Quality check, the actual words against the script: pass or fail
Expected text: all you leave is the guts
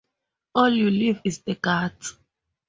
pass